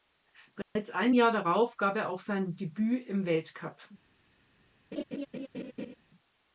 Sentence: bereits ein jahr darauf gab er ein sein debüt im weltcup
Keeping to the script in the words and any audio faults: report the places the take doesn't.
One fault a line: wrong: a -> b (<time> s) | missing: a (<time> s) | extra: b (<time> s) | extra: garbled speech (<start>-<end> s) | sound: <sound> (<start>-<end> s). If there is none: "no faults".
sound: dropout (0.6-0.8 s)
wrong: ein -> auch (2.1 s)
sound: laugh (4.9-5.9 s)